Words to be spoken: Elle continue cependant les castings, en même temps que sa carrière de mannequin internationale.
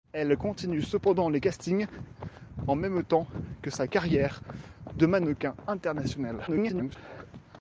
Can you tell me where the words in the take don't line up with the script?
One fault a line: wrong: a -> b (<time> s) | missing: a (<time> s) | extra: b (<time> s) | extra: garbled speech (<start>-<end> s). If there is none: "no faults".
extra: garbled speech (6.5-7.0 s)